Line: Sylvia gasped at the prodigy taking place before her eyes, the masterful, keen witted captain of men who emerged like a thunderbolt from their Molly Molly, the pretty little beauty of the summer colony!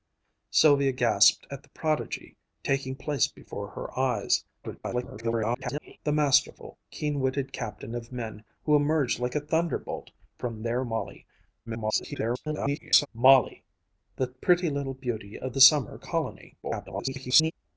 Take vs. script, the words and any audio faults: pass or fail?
fail